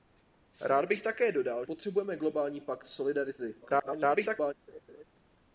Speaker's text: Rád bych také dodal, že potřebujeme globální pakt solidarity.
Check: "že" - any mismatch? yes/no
yes